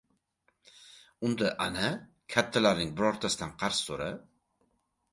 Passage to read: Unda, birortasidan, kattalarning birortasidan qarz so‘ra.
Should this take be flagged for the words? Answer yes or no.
yes